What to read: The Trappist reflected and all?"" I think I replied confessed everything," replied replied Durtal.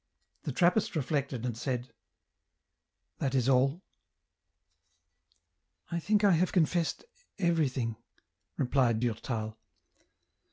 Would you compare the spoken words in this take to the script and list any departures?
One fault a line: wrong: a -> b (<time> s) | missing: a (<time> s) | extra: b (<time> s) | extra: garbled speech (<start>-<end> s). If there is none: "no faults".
extra: said That is (1.6 s)
wrong: replied -> have (6.3 s)
missing: replied (9.0 s)